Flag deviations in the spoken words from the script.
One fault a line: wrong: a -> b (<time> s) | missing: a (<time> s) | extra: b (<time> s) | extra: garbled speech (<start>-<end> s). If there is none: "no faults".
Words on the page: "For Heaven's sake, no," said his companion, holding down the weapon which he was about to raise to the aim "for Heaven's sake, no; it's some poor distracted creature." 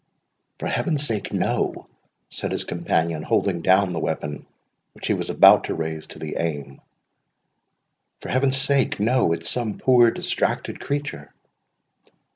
no faults